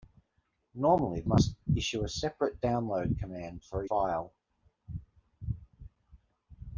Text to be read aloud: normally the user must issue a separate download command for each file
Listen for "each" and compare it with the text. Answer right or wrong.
wrong